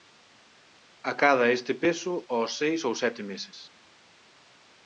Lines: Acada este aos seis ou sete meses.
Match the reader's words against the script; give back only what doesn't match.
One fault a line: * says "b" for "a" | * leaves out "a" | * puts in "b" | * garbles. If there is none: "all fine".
* puts in "peso"